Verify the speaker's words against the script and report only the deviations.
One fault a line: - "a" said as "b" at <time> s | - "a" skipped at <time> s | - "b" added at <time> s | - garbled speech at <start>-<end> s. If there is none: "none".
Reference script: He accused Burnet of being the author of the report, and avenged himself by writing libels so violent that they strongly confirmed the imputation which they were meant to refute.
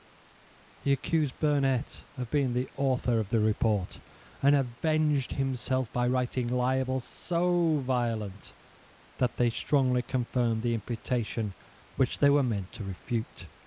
none